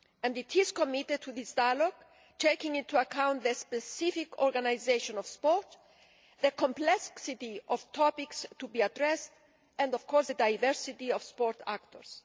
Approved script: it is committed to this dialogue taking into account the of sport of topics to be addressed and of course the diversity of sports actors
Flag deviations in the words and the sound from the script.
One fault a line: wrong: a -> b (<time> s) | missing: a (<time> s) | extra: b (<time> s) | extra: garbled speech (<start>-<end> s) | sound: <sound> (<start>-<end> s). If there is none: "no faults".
extra: specific organisation (3.5 s)
extra: the complexity (6.4 s)